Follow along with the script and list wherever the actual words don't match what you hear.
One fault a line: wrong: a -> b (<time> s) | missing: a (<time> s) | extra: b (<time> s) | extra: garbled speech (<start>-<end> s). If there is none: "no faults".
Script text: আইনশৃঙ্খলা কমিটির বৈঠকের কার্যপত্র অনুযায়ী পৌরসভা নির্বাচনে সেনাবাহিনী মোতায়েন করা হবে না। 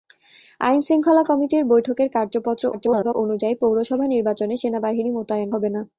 extra: garbled speech (2.7-3.1 s)
missing: করা (5.5 s)